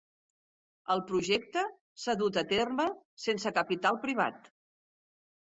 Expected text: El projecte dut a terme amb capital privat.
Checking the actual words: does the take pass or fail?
fail